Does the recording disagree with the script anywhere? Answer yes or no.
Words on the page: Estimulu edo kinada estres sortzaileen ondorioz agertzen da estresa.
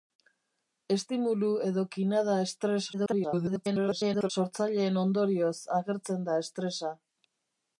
yes